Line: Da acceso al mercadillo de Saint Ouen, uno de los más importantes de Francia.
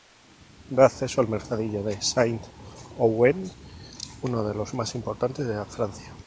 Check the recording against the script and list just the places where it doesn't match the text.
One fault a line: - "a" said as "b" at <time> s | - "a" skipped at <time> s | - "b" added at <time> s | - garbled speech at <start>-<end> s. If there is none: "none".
none